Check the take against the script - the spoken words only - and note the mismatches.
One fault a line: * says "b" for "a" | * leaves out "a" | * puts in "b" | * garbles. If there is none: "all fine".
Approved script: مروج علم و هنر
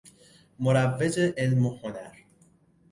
all fine